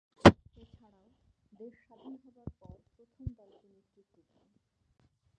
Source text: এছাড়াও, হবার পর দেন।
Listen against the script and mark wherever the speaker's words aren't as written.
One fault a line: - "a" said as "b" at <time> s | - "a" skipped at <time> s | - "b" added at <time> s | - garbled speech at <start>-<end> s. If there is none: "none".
- "দেশ স্বাধীন" added at 1.5 s
- "প্রথম দলকে নেতৃত্ব" added at 3.0 s